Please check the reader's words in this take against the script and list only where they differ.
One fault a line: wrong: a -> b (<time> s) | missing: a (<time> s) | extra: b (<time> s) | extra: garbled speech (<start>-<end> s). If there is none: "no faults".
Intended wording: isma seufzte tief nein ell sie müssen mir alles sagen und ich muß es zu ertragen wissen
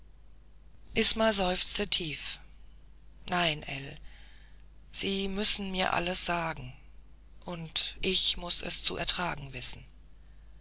no faults